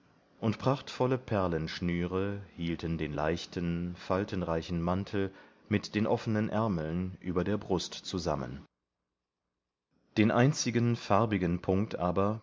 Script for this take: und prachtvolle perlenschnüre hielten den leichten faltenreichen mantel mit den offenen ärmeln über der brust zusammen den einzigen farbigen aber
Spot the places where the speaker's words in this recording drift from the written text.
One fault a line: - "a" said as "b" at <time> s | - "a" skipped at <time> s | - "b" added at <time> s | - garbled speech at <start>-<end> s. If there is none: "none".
- "punkt" added at 11.6 s